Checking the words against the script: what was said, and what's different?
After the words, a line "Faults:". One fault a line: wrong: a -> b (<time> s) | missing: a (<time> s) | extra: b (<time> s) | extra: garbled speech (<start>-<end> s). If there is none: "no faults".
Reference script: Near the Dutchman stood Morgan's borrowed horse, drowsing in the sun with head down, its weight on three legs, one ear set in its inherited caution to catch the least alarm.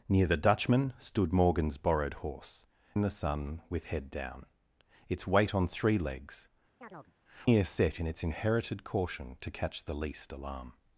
Near the Dutchman stood Morgan's borrowed horse, in the sun with head down, its weight on three legs, ear set in its inherited caution to catch the least alarm.
Faults:
missing: drowsing (2.6 s)
missing: one (6.5 s)